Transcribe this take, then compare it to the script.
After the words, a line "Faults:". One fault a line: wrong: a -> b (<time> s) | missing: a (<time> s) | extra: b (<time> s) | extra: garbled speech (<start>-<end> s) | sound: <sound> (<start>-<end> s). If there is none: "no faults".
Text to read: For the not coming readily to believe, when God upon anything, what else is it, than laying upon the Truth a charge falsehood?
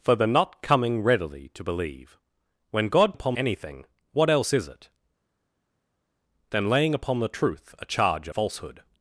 For the not coming readily to believe, when God upon anything, what else is it, than laying upon the Truth a charge falsehood?
Faults:
no faults